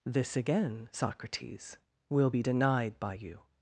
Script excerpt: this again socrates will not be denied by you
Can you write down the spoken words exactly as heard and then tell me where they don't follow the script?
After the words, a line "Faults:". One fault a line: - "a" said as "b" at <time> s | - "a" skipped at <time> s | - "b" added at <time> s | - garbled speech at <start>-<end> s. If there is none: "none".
this again socrates will be denied by you
Faults:
- "not" skipped at 2.3 s